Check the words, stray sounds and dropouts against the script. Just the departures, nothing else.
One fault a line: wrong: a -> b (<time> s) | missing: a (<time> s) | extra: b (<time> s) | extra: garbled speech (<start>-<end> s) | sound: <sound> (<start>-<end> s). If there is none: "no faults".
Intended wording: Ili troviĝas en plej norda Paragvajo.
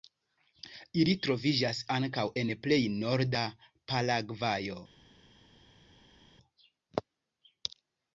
extra: ankaŭ (2.0 s)